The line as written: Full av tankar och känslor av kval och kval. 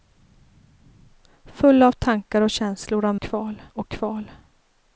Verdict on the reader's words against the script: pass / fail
pass